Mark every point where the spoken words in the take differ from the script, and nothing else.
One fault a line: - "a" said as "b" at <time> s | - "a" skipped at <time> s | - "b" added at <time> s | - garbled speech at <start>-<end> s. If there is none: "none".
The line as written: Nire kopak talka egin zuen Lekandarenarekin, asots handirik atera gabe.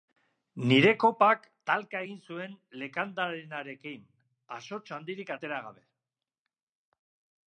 none